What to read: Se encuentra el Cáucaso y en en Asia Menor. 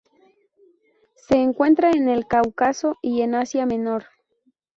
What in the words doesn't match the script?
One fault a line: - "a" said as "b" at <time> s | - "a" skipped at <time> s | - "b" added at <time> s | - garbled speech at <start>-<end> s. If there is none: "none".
- "en" added at 1.9 s
- "en" skipped at 3.4 s